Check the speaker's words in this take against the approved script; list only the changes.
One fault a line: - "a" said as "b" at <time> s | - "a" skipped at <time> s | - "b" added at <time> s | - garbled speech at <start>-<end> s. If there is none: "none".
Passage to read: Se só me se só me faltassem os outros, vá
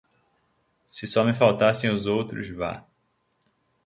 - "se só me" skipped at 1.3 s